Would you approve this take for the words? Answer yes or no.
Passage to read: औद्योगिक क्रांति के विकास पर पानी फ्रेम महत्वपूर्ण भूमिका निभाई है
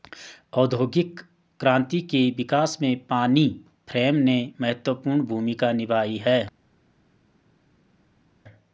no